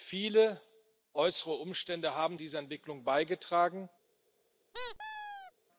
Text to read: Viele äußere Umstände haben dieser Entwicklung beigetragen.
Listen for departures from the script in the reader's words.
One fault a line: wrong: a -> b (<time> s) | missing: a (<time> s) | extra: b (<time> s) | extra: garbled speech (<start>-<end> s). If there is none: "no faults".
no faults